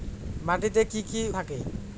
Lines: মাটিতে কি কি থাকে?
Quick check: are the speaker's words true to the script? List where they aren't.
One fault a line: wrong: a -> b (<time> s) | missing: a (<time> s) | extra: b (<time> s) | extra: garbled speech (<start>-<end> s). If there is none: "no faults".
no faults